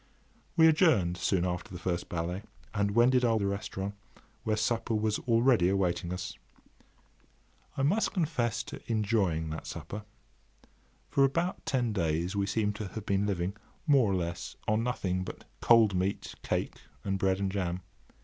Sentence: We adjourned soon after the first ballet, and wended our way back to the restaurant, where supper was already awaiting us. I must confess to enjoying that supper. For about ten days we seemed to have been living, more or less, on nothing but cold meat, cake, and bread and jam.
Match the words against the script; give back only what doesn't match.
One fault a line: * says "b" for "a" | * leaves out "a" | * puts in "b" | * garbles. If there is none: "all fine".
* leaves out "way back to"